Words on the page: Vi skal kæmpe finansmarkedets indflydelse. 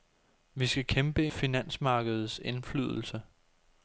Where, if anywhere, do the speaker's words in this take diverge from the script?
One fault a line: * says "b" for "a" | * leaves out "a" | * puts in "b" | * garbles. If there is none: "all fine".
all fine